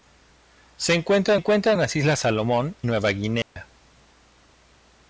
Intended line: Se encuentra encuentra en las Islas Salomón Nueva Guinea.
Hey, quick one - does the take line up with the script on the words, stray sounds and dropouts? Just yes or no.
no